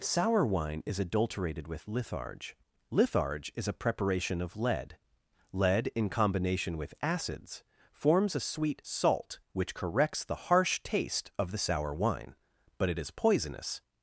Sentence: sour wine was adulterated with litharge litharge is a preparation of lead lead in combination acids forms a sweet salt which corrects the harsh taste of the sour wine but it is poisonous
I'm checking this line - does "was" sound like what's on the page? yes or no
no